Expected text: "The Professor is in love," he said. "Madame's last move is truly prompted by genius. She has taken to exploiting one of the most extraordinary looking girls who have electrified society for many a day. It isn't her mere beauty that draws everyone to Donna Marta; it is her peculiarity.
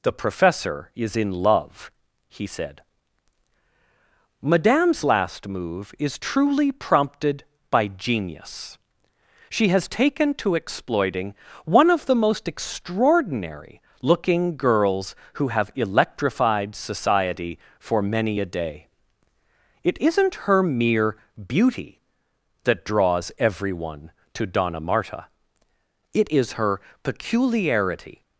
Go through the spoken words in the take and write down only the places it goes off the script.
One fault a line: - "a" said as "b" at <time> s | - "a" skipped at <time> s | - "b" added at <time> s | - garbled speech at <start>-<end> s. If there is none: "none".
none